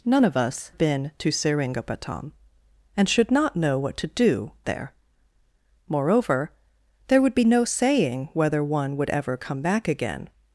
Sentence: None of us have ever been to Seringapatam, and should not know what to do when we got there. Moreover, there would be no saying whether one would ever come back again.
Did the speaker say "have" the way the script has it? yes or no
no